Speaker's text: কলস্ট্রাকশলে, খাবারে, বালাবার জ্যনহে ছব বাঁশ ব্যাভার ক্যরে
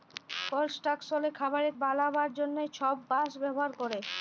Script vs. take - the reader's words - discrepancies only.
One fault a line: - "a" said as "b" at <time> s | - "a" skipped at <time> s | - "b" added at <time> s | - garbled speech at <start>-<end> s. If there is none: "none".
none